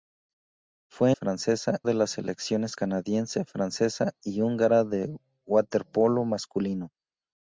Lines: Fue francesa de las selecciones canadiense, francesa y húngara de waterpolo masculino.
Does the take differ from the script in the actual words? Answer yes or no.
no